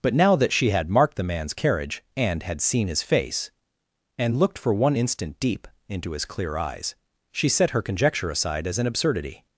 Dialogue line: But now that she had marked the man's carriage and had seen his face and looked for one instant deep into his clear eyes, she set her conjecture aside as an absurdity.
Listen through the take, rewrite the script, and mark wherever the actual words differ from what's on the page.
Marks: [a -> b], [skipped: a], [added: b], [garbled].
But now that she had marked the man's carriage and had seen his face and looked for one instant deep into his clear eyes, she set her conjecture aside as an absurdity.